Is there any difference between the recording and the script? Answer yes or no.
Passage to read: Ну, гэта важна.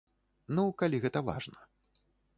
yes